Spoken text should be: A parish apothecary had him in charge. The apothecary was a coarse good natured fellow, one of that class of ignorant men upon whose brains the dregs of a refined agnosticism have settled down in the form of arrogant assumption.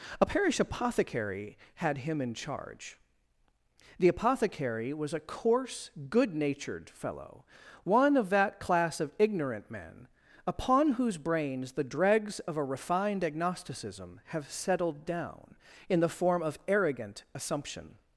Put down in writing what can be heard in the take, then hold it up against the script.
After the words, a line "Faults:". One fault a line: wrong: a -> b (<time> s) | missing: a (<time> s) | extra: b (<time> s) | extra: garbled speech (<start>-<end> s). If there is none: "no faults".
A parish apothecary had him in charge. The apothecary was a coarse good natured fellow, one of that class of ignorant men upon whose brains the dregs of a refined agnosticism have settled down in the form of arrogant assumption.
Faults:
no faults